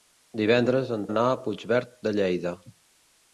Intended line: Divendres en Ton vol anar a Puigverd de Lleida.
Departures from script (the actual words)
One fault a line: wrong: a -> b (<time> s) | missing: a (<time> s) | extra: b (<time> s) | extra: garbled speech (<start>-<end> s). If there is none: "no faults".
missing: Ton vol (1.0 s)